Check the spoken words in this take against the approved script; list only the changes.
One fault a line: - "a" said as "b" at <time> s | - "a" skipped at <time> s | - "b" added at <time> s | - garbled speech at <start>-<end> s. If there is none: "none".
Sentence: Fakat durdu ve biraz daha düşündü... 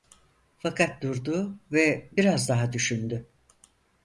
none